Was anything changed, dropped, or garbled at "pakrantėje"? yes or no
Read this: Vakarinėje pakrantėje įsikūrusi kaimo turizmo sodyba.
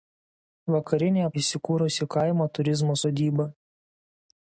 yes